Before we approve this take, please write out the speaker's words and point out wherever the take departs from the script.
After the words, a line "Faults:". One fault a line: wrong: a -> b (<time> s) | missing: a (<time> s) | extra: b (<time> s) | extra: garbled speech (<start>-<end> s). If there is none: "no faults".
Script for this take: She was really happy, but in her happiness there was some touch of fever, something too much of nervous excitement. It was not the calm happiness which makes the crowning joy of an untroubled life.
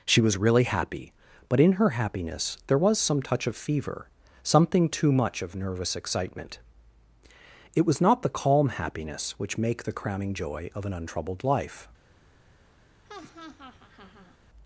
She was really happy, but in her happiness there was some touch of fever, something too much of nervous excitement. It was not the calm happiness which make the crowning joy of an untroubled life.
Faults:
wrong: makes -> make (9.6 s)